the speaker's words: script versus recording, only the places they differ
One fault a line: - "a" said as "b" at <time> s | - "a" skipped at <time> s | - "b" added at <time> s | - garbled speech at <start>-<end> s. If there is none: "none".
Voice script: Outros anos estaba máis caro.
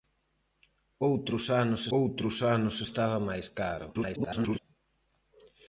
- "outros anos" added at 2.0 s
- garbled speech at 3.9-4.6 s